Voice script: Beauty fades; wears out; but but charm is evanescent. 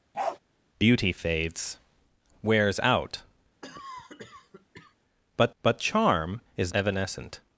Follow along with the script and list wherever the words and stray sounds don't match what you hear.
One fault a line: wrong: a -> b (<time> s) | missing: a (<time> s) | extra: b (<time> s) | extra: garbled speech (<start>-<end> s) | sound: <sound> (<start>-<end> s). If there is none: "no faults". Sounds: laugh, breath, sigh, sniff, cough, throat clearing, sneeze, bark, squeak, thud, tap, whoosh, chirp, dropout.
sound: bark (0.1-0.4 s)
sound: cough (3.6-5.0 s)